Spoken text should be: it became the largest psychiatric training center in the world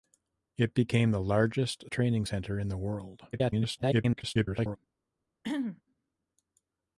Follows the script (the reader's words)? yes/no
no